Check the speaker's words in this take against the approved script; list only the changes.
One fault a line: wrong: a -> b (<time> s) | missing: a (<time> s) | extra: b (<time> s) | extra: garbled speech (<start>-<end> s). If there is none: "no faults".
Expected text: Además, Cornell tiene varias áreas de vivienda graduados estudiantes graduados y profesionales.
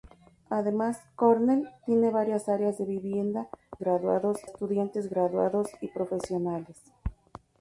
no faults